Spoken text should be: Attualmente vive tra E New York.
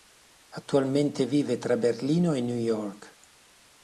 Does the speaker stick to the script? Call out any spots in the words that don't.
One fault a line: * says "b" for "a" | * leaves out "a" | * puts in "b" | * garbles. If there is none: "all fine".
* puts in "Berlino"